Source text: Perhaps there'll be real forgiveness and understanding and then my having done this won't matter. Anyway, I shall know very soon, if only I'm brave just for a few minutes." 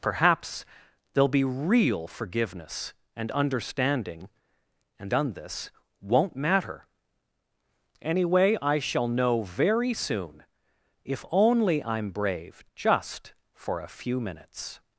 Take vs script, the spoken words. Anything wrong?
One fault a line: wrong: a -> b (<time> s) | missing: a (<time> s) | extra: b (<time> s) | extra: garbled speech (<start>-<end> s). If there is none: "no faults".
missing: then my having (5.1 s)